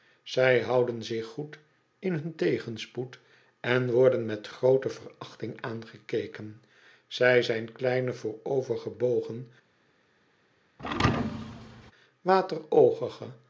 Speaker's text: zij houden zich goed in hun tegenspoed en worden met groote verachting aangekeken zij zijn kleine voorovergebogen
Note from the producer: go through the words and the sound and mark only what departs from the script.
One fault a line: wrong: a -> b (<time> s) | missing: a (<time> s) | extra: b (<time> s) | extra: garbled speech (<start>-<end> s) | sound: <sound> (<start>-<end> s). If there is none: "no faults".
sound: thud (10.8-11.9 s)